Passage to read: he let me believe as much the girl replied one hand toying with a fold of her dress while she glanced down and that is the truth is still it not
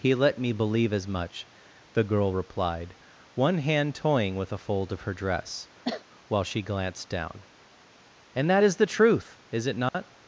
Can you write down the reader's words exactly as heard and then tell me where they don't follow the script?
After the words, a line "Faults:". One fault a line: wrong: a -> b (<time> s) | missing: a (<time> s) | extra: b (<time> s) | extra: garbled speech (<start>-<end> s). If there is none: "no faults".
he let me believe as much the girl replied one hand toying with a fold of her dress while she glanced down and that is the truth is it not
Faults:
missing: still (9.7 s)